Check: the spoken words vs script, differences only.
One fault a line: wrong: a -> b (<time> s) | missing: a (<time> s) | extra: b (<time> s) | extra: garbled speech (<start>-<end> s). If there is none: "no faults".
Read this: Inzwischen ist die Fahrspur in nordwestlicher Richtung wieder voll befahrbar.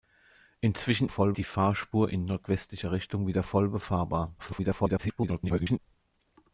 wrong: ist -> voll (1.1 s)
extra: garbled speech (4.4-5.8 s)